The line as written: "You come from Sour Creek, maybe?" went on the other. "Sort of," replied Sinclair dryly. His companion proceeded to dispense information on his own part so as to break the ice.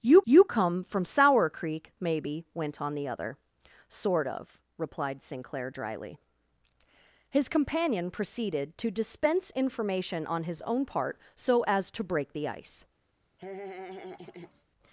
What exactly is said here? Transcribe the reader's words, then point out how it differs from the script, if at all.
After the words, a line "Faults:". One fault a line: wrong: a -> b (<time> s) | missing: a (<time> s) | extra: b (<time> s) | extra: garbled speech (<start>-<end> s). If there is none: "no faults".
"You you come from Sour Creek, maybe?" went on the other. "Sort of," replied Sinclair dryly. His companion proceeded to dispense information on his own part so as to break the ice.
Faults:
extra: you (0.2 s)